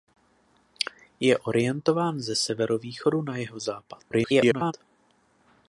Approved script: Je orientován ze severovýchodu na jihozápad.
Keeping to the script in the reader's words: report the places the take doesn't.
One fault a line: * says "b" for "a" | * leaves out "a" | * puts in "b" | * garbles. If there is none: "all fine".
* garbles